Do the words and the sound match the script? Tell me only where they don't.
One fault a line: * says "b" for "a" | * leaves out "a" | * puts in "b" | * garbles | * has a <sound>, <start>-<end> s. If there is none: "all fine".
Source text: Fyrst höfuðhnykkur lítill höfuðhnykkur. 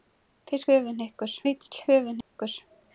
* has a dropout, 2.2-2.4 s